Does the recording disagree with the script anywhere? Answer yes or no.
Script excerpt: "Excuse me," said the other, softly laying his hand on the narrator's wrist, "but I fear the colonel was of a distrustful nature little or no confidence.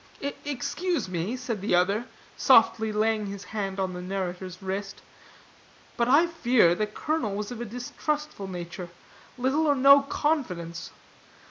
no